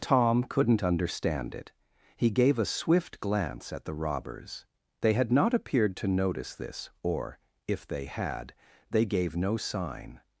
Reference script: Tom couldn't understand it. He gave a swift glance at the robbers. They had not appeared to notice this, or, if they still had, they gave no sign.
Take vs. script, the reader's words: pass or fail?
fail